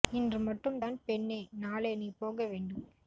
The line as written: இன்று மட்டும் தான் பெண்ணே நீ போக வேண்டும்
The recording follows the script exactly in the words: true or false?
false